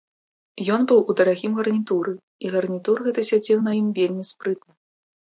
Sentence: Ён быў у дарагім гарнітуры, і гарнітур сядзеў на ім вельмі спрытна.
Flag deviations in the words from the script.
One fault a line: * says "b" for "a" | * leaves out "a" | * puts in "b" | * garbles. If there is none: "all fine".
* puts in "гэты"